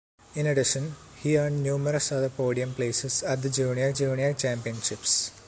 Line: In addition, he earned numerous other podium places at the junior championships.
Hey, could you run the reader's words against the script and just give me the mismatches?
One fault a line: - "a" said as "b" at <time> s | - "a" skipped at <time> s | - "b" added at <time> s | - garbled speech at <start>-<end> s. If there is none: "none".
- "junior" added at 3.9 s